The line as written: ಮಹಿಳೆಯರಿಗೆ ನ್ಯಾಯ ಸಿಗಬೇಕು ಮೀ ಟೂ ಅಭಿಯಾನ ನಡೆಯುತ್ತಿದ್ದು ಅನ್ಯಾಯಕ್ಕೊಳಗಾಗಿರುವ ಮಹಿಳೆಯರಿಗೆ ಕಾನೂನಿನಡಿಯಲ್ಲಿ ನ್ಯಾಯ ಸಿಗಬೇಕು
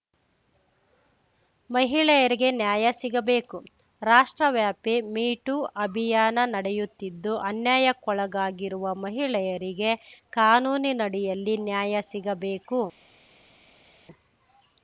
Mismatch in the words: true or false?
true